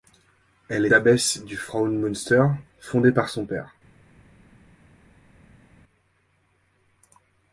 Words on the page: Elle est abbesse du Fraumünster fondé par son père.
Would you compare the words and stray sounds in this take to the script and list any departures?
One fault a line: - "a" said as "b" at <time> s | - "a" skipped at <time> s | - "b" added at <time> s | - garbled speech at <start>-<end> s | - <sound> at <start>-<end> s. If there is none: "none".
- "est" skipped at 0.9 s